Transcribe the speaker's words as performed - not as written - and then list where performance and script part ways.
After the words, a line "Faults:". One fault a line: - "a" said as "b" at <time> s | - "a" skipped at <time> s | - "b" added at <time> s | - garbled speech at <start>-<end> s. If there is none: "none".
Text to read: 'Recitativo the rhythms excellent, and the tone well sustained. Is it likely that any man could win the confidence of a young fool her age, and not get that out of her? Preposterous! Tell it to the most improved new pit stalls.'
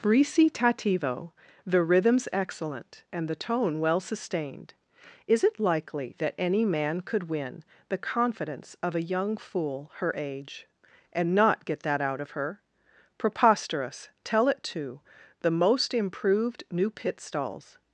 'Recitativo the rhythms excellent, and the tone well sustained. Is it likely that any man could win the confidence of a young fool her age, and not get that out of her? Preposterous! Tell it to the most improved new pit stalls.'
Faults:
none